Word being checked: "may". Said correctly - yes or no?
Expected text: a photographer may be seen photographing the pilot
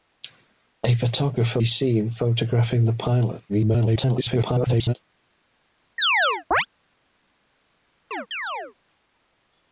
no